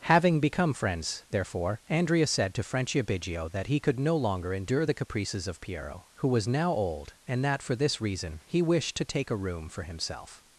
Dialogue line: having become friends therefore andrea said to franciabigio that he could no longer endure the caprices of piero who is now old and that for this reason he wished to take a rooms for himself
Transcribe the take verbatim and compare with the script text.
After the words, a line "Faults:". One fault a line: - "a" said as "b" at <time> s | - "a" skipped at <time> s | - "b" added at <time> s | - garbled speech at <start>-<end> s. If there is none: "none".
having become friends therefore andrea said to franciabigio that he could no longer endure the caprices of piero who was now old and that for this reason he wished to take a room for himself
Faults:
- "is" said as "was" at 6.3 s
- "rooms" said as "room" at 9.4 s